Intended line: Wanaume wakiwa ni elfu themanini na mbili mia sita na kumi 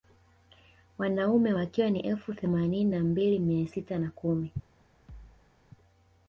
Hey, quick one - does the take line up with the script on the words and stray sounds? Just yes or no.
no